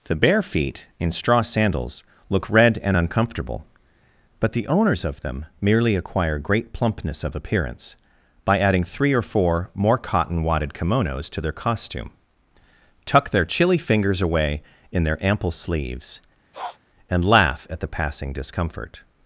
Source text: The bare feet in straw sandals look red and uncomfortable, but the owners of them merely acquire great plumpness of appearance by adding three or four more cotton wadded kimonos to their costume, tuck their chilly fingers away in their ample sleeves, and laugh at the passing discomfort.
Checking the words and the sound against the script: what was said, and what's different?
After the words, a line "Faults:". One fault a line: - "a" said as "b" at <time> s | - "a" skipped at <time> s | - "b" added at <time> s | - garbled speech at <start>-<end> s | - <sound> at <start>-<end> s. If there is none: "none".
The bare feet in straw sandals look red and uncomfortable, but the owners of them merely acquire great plumpness of appearance by adding three or four more cotton wadded kimonos to their costume, tuck their chilly fingers away in their ample sleeves, and laugh at the passing discomfort.
Faults:
- sniff at 16.5-16.8 s